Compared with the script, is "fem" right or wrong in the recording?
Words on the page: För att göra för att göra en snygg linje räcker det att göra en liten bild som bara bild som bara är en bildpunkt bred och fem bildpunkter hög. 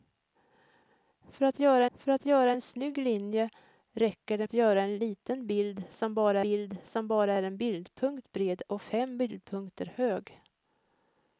right